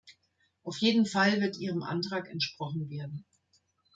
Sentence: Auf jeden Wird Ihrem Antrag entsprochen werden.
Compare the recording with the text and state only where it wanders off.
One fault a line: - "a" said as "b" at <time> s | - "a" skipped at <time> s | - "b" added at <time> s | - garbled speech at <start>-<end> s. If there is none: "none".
- "Fall" added at 1.1 s